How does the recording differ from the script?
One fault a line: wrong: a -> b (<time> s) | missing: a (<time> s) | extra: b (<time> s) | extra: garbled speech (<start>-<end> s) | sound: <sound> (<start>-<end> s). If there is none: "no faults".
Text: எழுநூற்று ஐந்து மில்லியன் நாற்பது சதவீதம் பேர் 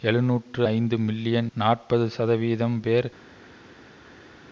no faults